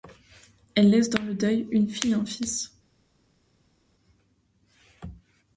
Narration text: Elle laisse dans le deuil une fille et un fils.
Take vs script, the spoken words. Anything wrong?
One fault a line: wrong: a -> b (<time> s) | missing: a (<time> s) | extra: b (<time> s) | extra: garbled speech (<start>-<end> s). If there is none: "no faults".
no faults